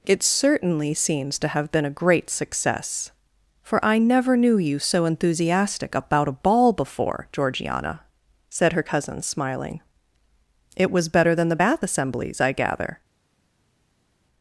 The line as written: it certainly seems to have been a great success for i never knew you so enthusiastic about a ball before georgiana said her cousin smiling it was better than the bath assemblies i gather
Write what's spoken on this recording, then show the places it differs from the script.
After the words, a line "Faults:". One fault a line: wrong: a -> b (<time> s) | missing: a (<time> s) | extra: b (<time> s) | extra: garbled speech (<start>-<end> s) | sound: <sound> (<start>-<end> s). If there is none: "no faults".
it certainly seems to have been a great success for i never knew you so enthusiastic about a ball before georgiana said her cousin smiling it was better than the bath assemblies i gather
Faults:
no faults